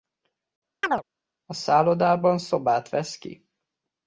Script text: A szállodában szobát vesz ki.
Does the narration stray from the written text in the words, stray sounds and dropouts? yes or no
yes